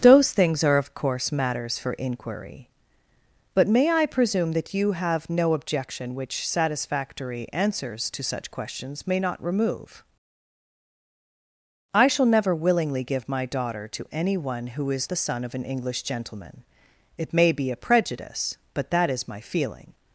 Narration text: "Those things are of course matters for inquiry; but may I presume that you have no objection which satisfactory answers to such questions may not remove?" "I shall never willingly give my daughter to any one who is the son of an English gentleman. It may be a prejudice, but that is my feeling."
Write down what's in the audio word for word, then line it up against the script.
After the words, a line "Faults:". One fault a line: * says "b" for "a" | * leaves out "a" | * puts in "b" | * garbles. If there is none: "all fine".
"Those things are of course matters for inquiry; but may I presume that you have no objection which satisfactory answers to such questions may not remove?" "I shall never willingly give my daughter to any one who is the son of an English gentleman. It may be a prejudice, but that is my feeling."
Faults:
all fine